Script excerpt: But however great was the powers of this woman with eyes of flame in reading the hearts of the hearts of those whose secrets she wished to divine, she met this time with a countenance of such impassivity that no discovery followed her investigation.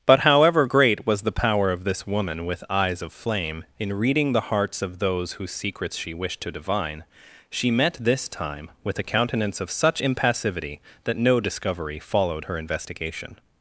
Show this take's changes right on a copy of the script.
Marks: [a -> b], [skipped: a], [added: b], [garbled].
But however great was the [powers -> power] of this woman with eyes of flame in reading the hearts of [skipped: the hearts of] those whose secrets she wished to divine, she met this time with a countenance of such impassivity that no discovery followed her investigation.